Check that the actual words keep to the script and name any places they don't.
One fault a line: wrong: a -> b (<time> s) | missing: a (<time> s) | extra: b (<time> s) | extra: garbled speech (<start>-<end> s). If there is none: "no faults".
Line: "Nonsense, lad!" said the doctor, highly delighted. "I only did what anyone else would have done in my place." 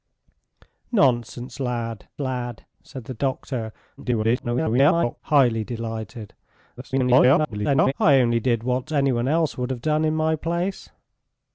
extra: lad (2.2 s)
extra: garbled speech (4.0-5.2 s)
extra: garbled speech (6.8-7.9 s)